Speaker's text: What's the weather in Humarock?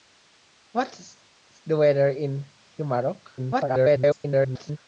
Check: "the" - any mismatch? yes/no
no